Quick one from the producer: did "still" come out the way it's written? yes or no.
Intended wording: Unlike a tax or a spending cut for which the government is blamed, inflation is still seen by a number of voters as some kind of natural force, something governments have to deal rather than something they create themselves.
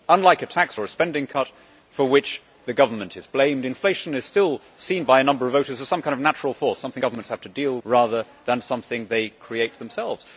yes